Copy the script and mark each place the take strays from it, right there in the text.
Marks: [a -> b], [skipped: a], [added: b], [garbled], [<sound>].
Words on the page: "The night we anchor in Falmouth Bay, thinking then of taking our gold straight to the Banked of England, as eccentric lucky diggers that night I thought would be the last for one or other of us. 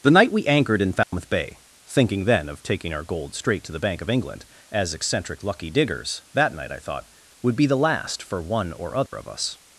"The night we [anchor -> anchored] in Falmouth [dropout] Bay, thinking then of taking our gold straight to the [Banked -> Bank] of England, as eccentric lucky diggers that night I thought would be the last for one or other [dropout] of us.